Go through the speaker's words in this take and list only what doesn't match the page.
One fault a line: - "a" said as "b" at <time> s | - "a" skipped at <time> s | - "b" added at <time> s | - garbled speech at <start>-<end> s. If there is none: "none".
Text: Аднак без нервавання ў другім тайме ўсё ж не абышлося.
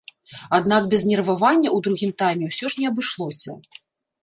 none